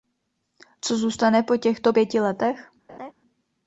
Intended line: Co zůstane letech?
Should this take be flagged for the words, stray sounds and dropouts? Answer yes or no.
yes